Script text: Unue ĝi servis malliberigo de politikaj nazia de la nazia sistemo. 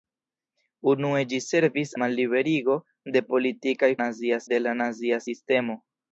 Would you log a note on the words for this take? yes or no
no